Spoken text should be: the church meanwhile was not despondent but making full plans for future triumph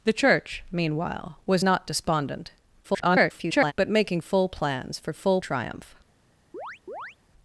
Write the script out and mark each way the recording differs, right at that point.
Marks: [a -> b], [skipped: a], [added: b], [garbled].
the church meanwhile was not despondent [garbled] but making full plans for [future -> full] triumph